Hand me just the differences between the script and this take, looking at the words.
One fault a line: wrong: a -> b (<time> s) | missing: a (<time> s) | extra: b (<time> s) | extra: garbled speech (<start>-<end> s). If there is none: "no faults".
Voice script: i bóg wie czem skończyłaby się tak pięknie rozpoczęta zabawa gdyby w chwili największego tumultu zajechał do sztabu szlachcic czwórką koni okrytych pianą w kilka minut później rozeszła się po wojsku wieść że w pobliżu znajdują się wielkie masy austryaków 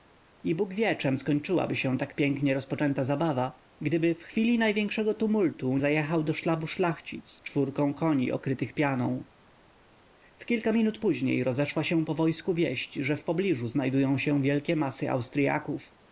no faults